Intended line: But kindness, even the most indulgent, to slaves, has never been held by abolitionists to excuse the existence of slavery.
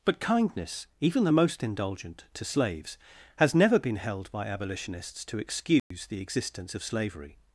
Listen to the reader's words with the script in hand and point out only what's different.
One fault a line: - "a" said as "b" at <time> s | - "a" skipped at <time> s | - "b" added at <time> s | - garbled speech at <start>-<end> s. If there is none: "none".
none